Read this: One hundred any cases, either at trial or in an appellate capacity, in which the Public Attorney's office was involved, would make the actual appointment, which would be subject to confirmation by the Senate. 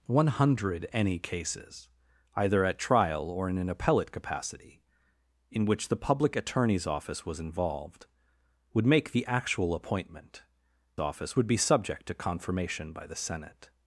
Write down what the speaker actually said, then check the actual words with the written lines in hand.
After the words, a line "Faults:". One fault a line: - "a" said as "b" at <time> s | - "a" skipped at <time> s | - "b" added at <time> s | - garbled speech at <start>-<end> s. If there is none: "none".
One hundred any cases, either at trial or in an appellate capacity, in which the Public Attorney's office was involved, would make the actual appointment, office would be subject to confirmation by the Senate.
Faults:
- "which" said as "office" at 11.0 s